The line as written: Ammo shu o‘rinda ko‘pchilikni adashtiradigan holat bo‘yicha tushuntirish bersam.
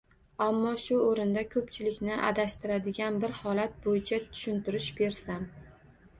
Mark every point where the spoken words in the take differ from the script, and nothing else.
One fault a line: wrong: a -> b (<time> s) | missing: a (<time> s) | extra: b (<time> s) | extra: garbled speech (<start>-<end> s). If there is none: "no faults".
extra: bir (3.2 s)